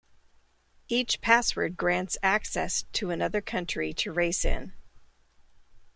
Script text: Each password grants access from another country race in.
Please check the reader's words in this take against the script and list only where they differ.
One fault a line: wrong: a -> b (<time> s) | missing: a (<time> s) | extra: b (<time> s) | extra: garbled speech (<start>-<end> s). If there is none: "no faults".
wrong: from -> to (2.9 s)
extra: to (4.0 s)